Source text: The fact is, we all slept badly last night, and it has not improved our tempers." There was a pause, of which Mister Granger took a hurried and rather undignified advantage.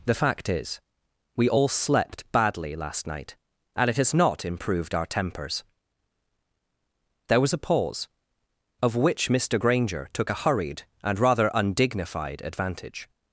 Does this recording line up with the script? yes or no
yes